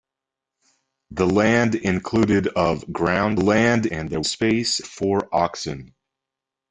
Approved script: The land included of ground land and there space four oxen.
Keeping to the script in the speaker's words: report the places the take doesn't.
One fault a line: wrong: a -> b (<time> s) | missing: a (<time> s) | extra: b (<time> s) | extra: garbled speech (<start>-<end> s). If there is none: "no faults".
no faults